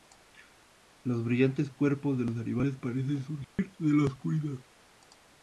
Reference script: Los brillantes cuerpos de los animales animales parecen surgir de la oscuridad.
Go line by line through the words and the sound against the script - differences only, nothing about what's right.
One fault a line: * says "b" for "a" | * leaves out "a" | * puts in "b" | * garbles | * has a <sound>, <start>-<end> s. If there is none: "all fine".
* leaves out "animales"
* has a dropout, 3.4-3.6 s